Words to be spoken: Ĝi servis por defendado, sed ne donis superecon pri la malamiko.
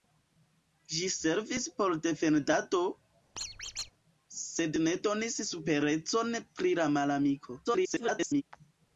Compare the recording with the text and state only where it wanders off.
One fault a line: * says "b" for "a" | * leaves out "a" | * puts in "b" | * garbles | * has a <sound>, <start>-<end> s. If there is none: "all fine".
* has a squeak, 3.4-3.9 s
* garbles